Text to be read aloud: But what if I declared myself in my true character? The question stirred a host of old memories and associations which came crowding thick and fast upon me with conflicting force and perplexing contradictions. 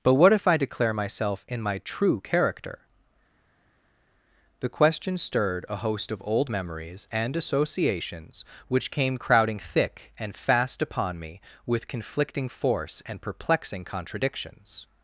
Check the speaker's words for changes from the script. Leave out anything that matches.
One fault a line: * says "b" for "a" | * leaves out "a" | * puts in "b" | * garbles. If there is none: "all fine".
* says "declare" for "declared"